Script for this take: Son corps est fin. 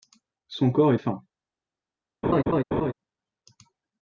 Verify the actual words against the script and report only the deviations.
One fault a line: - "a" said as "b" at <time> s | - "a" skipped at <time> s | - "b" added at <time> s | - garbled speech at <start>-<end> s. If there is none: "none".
none